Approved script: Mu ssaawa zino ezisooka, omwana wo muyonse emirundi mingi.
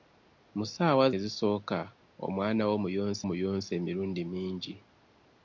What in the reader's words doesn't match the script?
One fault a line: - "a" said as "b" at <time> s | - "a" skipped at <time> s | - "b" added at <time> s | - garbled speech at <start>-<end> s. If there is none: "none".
- "zino" skipped at 1.1 s
- "muyonse" added at 3.3 s